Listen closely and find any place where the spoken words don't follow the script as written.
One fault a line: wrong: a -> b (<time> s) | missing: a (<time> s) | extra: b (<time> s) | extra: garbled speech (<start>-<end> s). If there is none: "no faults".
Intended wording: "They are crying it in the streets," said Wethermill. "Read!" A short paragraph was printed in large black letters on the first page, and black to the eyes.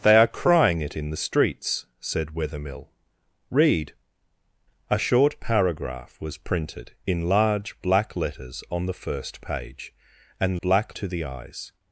no faults